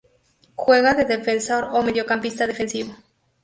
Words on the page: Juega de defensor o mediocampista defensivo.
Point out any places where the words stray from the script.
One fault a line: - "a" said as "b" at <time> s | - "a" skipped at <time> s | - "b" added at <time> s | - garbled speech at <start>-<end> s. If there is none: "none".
none